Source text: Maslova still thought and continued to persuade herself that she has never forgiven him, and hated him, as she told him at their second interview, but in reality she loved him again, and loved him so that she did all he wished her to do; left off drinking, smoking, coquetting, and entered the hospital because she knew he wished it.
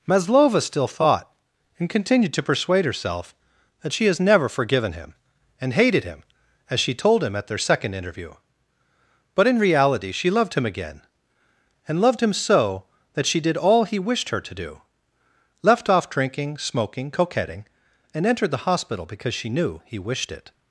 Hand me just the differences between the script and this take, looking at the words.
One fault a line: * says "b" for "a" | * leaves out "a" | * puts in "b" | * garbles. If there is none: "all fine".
all fine